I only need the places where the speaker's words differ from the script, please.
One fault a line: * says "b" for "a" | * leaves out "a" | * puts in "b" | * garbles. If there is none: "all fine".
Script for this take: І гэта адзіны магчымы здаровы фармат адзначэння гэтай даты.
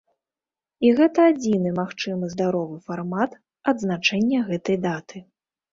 all fine